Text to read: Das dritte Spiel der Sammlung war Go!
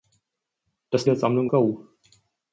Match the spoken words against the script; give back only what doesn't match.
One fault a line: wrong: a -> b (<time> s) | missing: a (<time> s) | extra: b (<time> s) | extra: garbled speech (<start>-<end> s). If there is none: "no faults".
missing: dritte Spiel (1.1 s)
missing: war (1.5 s)